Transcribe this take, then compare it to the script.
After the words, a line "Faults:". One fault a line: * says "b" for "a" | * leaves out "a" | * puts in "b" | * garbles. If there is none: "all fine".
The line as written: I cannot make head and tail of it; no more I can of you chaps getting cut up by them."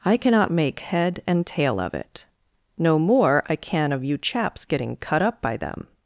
I cannot make head and tail of it; no more I can of you chaps getting cut up by them."
Faults:
all fine